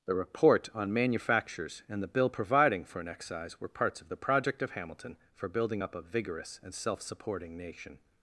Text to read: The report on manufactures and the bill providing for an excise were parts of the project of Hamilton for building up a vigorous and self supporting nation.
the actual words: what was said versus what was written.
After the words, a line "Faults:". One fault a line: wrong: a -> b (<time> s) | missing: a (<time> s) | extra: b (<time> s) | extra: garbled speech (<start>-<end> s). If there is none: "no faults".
The report on manufactures and the bill providing for an excise were parts of the project of Hamilton for building up a vigorous and self supporting nation.
Faults:
no faults